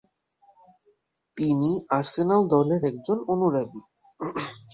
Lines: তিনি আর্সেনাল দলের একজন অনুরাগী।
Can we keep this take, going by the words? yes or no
yes